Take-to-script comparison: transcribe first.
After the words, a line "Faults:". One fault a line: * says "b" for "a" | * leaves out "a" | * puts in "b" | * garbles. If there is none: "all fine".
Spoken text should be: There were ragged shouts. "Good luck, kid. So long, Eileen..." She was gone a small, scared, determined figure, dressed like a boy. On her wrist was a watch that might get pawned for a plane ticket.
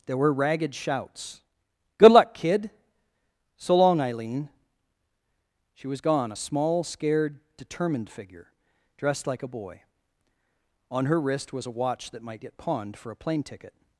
There were ragged shouts. "Good luck, kid. So long, Eileen..." She was gone a small, scared, determined figure, dressed like a boy. On her wrist was a watch that might get pawned for a plane ticket.
Faults:
all fine